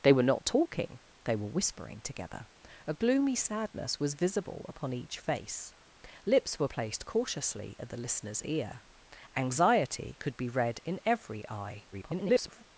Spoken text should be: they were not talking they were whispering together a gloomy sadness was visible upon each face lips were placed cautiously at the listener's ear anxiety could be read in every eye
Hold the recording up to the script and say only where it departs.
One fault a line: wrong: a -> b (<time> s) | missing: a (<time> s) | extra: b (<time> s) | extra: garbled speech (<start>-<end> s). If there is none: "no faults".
extra: garbled speech (11.9-12.6 s)